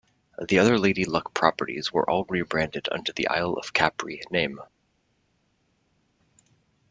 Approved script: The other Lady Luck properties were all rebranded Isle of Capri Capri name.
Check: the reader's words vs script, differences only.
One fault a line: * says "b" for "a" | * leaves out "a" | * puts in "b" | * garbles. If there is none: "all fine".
* puts in "under the"
* leaves out "Capri"